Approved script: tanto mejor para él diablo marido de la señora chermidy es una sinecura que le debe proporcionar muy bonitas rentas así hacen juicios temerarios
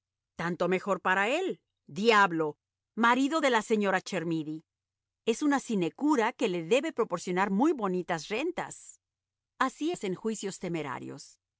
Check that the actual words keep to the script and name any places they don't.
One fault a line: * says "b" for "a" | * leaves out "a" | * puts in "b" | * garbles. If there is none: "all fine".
all fine